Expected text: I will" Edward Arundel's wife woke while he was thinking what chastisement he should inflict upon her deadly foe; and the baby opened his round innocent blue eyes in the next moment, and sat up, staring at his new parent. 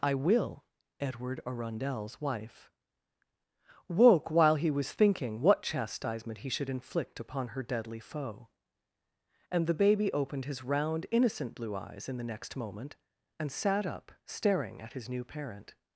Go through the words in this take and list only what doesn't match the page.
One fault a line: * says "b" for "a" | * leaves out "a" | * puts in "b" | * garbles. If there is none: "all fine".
all fine